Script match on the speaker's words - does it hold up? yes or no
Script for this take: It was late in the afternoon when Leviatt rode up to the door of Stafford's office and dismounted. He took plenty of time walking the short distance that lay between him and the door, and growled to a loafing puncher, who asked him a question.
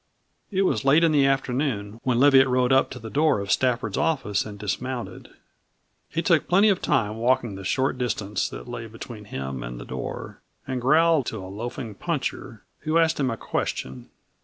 yes